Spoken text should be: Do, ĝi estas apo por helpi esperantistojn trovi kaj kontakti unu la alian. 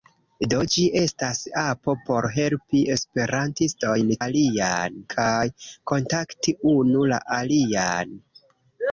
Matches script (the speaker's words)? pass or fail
fail